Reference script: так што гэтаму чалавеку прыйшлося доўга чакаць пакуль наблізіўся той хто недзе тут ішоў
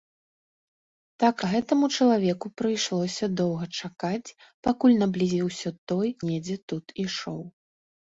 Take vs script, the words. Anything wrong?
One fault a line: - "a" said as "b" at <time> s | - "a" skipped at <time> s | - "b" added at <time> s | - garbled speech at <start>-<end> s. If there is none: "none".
- "што" skipped at 1.4 s
- "хто" skipped at 6.1 s